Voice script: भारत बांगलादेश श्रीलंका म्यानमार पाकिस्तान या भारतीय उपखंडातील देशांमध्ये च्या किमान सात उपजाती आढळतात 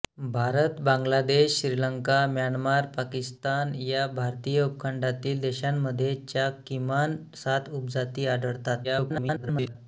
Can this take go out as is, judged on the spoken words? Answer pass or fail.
fail